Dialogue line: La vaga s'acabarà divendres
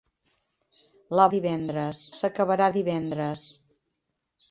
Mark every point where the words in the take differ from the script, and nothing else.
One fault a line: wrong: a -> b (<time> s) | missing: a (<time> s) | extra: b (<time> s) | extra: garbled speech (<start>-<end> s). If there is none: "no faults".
wrong: vaga -> divendres (1.3 s)